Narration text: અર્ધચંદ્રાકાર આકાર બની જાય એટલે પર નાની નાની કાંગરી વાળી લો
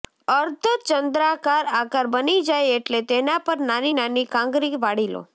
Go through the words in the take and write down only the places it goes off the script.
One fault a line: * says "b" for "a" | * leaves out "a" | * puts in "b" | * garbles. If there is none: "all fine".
* puts in "તેના"